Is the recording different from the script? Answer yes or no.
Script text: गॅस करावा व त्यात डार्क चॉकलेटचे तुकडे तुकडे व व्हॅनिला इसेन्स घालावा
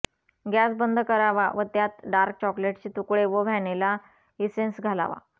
yes